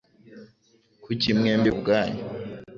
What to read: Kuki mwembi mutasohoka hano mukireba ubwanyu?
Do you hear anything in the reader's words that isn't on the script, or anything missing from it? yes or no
yes